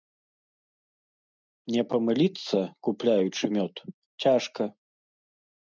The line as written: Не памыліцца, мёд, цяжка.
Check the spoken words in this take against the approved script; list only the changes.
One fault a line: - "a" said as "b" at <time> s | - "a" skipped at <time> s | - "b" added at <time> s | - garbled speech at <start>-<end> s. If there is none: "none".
- "купляючы" added at 2.9 s